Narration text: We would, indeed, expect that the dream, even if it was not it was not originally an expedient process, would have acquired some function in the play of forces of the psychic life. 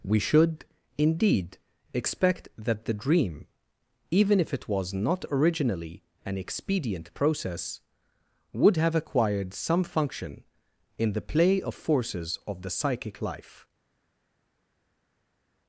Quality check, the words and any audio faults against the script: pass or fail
fail